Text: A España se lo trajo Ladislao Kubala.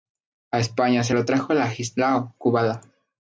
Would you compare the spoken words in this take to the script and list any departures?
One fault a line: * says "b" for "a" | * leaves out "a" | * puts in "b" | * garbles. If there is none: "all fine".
all fine